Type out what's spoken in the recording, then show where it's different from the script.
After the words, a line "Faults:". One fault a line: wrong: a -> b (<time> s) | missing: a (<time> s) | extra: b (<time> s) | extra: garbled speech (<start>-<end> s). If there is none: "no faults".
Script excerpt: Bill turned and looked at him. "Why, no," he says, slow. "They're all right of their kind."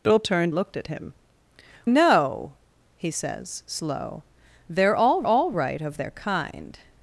Bill turned looked at him. "No," he says, slow. "They're all all right of their kind."
Faults:
missing: and (0.6 s)
missing: Why (1.1 s)
extra: all (5.2 s)